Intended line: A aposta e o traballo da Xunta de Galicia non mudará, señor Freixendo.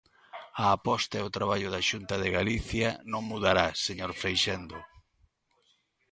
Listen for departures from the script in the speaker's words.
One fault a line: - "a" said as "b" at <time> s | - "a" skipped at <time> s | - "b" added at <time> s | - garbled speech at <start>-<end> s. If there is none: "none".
none